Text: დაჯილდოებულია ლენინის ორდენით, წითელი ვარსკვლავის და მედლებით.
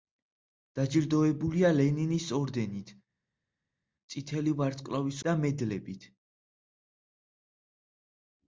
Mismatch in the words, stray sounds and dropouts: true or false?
false